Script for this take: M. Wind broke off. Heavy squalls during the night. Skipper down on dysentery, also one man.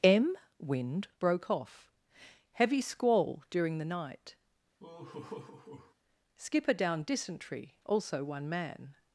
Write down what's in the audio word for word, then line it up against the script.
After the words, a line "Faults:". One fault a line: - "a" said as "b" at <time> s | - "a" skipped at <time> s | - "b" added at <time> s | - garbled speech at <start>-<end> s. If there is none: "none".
M. Wind broke off. Heavy squall during the night. Skipper down dysentery, also one man.
Faults:
- "squalls" said as "squall" at 2.8 s
- "on" skipped at 7.0 s